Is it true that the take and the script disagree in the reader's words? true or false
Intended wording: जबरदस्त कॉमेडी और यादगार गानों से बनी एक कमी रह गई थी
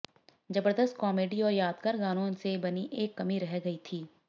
false